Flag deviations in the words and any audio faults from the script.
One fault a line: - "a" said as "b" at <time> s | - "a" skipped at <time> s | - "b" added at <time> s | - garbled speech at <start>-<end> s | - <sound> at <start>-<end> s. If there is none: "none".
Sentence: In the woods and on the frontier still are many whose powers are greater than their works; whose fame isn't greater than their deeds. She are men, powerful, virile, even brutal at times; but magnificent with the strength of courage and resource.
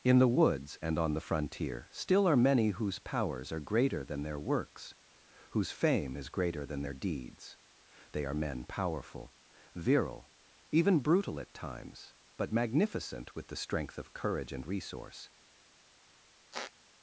- "isn't" said as "is" at 6.2 s
- "She" said as "They" at 8.1 s
- squeak at 16.5-16.7 s